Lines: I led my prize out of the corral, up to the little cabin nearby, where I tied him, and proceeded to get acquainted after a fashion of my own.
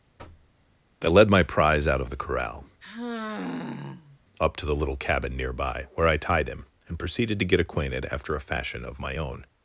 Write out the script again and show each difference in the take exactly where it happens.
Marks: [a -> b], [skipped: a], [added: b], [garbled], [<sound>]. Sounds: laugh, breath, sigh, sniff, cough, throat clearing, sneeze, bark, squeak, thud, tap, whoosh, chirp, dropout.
[thud] I led my prize out of the corral, [sigh] up to the little cabin nearby, where I tied him, and proceeded to get acquainted after a fashion of my own.